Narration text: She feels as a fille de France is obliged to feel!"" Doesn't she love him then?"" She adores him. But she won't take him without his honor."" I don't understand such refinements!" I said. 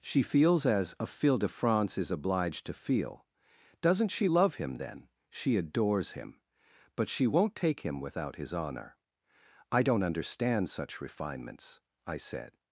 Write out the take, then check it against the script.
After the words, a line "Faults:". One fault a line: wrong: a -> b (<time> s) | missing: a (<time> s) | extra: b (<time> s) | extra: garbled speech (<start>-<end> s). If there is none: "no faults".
She feels as a fille de France is obliged to feel!"" Doesn't she love him then?"" She adores him. But she won't take him without his honor."" I don't understand such refinements!" I said.
Faults:
no faults